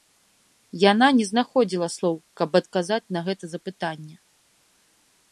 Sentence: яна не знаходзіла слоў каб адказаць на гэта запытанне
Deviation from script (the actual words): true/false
false